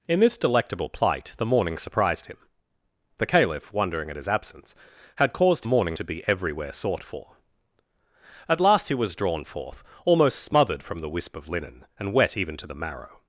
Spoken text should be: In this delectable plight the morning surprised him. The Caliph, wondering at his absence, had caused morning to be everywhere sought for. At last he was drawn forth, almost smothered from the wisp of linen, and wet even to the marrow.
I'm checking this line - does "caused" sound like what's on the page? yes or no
yes